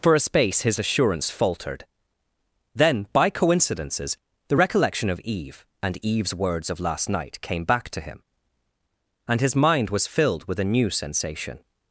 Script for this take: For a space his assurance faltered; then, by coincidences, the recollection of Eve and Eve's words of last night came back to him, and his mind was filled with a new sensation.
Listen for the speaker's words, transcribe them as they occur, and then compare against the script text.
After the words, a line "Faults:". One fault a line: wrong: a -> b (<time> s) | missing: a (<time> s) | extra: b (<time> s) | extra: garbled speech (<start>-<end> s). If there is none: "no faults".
For a space his assurance faltered; then, by coincidences, the recollection of Eve and Eve's words of last night came back to him, and his mind was filled with a new sensation.
Faults:
no faults